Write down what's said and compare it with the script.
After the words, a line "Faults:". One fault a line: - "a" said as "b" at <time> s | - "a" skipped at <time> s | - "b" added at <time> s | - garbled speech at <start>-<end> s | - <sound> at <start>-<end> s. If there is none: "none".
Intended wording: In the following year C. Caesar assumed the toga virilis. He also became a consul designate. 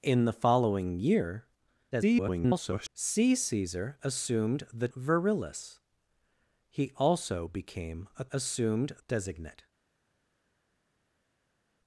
In the following year [garbled] C. Caesar assumed the virilis. He also became a assumed designate.
Faults:
- garbled speech at 1.9-2.9 s
- "toga" skipped at 4.9 s
- "consul" said as "assumed" at 8.3 s